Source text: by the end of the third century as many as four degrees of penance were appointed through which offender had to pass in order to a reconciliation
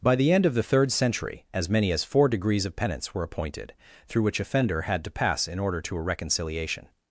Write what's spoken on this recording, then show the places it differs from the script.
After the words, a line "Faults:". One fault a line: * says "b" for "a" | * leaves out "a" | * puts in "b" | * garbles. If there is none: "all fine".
by the end of the third century as many as four degrees of penance were appointed through which offender had to pass in order to a reconciliation
Faults:
all fine